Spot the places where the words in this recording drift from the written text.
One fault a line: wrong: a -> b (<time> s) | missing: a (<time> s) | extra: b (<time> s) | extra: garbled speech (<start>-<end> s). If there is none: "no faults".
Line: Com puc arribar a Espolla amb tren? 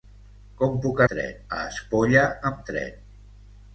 wrong: arribar -> tren (1.1 s)